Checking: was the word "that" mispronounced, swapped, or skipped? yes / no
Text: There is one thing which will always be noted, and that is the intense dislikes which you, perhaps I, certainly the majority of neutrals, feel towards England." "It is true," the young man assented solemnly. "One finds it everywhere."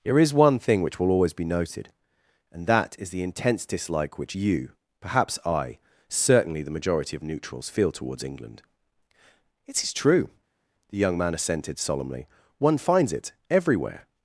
no